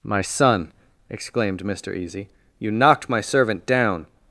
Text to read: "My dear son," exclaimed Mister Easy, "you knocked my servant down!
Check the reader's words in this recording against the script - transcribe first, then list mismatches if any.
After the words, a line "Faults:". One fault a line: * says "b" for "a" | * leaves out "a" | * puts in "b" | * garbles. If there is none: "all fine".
"My son," exclaimed Mister Easy, "you knocked my servant down!
Faults:
* leaves out "dear"